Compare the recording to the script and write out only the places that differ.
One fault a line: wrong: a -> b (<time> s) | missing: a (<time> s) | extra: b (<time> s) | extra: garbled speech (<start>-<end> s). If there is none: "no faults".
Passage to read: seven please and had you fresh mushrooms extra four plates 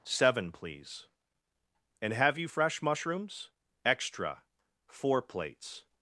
wrong: had -> have (2.1 s)